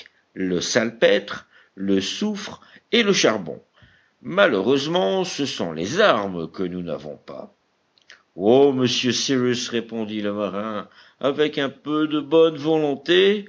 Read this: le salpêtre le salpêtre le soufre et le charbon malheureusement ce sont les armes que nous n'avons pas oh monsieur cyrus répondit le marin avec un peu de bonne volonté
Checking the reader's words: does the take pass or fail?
fail